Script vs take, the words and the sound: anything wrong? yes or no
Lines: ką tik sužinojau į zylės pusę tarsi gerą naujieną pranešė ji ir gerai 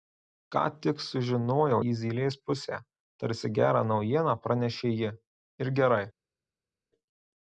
no